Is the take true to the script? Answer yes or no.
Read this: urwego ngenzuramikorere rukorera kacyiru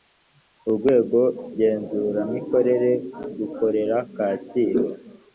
yes